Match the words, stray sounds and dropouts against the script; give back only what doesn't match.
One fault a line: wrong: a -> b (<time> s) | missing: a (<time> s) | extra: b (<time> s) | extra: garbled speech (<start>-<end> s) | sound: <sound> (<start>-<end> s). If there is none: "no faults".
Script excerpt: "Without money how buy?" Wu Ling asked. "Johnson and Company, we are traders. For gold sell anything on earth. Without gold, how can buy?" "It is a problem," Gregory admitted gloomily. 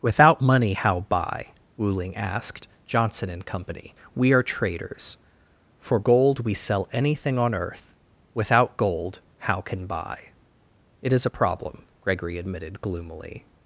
extra: we (6.4 s)